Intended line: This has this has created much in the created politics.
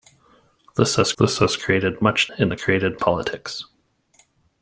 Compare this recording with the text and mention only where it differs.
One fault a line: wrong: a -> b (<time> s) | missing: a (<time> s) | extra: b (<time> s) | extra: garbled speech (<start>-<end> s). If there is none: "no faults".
no faults